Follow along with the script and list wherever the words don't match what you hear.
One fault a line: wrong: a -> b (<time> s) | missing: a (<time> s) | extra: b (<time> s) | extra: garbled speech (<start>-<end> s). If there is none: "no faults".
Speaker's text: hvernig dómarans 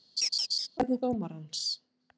no faults